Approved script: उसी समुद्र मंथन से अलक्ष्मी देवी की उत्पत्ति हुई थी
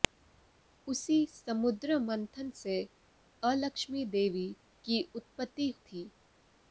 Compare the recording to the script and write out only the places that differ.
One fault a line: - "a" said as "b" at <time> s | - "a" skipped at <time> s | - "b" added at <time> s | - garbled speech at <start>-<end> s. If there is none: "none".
- "हुई" skipped at 5.7 s